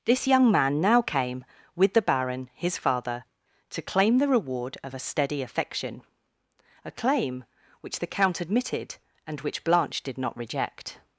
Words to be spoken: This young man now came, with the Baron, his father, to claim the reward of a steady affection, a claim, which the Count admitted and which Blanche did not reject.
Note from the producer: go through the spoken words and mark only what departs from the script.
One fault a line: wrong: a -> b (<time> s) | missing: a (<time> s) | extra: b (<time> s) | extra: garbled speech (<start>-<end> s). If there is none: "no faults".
no faults